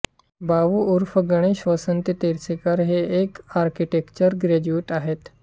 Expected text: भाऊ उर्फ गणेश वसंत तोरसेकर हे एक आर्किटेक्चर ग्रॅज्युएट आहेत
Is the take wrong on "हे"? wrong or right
right